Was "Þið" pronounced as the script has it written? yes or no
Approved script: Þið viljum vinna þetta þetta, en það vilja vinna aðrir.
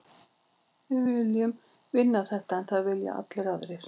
no